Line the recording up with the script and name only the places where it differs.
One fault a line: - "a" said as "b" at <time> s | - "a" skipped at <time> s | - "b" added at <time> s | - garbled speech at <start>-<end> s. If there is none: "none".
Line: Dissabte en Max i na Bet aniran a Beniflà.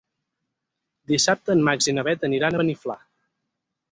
none